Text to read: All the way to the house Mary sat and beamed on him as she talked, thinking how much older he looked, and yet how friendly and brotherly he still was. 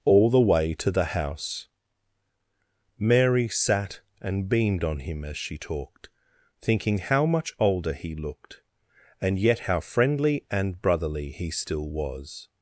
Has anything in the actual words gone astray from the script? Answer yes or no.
no